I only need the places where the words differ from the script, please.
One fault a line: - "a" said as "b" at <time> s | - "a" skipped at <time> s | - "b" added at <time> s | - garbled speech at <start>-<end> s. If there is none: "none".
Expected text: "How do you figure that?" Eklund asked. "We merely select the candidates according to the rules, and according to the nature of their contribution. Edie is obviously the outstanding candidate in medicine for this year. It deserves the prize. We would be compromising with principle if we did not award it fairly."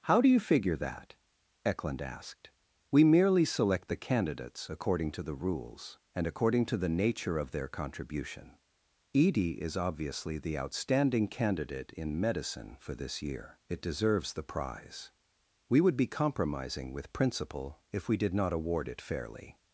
none